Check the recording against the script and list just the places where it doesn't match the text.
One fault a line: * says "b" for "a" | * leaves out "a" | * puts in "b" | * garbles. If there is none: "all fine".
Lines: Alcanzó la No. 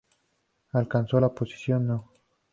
* puts in "posición"